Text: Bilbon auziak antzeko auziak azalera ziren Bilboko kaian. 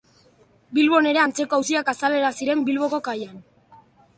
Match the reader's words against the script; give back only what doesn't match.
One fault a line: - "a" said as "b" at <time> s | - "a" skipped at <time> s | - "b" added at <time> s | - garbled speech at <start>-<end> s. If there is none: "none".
- "auziak" said as "ere" at 1.1 s